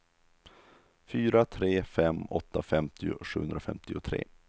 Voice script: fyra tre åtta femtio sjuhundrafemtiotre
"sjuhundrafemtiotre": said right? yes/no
yes